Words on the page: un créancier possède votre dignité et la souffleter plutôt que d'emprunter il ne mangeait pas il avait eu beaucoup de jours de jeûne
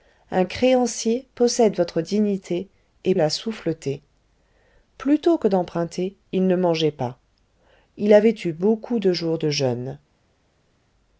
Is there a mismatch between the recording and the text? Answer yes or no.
no